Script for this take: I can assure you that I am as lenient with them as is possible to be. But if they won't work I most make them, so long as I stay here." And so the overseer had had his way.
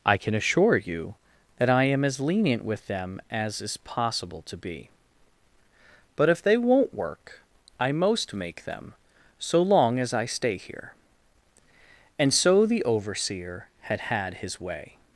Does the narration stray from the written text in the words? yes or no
no